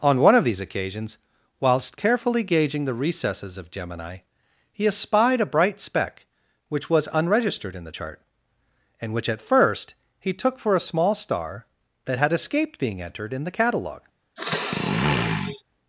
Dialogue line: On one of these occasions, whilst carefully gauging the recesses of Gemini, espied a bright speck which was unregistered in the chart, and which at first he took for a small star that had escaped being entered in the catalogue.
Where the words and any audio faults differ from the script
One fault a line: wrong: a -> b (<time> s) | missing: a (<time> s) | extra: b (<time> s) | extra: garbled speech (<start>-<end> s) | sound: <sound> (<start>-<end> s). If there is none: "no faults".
extra: he (4.7 s)
sound: sniff (14.4-15.6 s)